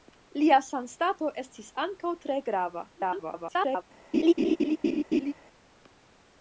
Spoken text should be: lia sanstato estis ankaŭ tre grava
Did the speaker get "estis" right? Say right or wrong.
right